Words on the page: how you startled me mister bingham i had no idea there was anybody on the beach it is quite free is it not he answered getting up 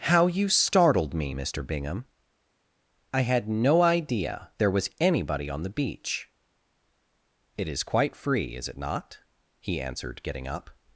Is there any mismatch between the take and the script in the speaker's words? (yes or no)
no